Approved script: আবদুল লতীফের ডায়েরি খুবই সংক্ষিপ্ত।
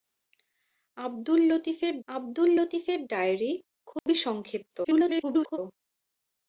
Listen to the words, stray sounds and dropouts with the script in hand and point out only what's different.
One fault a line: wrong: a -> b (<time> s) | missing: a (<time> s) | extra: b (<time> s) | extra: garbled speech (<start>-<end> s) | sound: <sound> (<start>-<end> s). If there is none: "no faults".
extra: আবদুল লতীফের (2.1 s)
sound: dropout (4.0-4.1 s)
extra: garbled speech (4.8-5.6 s)